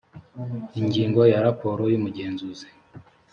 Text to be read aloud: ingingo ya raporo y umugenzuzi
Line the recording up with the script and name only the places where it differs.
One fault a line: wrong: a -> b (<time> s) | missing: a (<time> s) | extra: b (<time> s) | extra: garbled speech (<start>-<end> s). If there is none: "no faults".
no faults